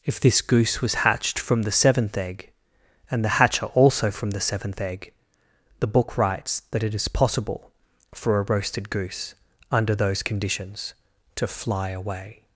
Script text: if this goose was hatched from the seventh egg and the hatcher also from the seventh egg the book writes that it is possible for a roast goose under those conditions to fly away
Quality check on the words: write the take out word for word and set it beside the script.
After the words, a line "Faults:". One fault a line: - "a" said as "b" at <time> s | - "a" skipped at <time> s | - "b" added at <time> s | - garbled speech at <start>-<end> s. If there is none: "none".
if this goose was hatched from the seventh egg and the hatcher also from the seventh egg the book writes that it is possible for a roasted goose under those conditions to fly away
Faults:
- "roast" said as "roasted" at 8.4 s